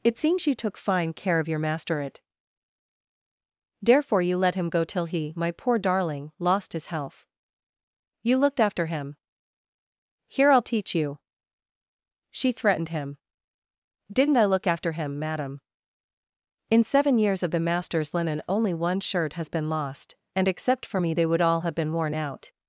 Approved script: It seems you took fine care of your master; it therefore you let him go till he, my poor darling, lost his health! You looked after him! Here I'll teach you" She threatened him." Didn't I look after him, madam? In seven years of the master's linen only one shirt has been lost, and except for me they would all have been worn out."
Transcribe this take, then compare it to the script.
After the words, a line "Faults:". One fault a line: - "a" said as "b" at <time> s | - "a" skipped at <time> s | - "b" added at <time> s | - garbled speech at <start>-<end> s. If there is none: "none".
It seems you took fine care of your master; it therefore you let him go till he, my poor darling, lost his health! You looked after him! Here I'll teach you" She threatened him." Didn't I look after him, madam? In seven years of the master's linen only one shirt has been lost, and except for me they would all have been worn out."
Faults:
none